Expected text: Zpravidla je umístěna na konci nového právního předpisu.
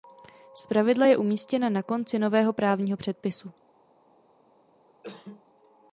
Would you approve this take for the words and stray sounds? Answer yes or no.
no